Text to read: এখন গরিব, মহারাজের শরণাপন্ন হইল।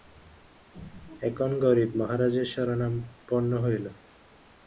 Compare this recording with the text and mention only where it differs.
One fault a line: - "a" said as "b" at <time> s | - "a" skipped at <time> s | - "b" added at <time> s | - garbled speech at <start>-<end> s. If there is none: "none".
none